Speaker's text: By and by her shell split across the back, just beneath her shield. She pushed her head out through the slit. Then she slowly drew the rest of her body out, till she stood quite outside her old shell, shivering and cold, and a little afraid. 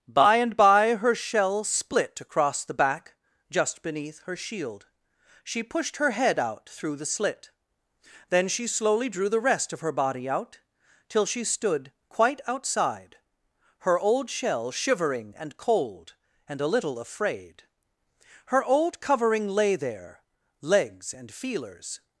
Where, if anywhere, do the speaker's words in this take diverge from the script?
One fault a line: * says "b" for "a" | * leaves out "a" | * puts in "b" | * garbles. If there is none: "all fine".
* puts in "Her old covering lay there legs and feelers"